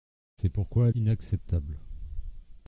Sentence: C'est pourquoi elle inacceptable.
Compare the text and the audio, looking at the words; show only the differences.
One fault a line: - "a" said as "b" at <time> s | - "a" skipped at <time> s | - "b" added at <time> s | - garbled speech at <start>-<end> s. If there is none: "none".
none